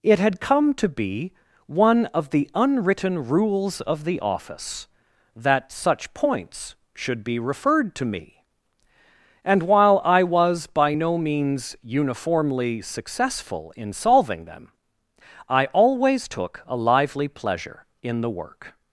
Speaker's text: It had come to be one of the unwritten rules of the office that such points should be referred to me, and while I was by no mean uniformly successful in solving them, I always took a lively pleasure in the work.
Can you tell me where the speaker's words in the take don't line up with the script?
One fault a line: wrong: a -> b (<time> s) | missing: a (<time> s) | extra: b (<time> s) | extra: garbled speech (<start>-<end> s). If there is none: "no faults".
wrong: mean -> means (11.2 s)